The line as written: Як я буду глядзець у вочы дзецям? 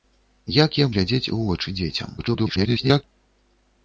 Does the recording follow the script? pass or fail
fail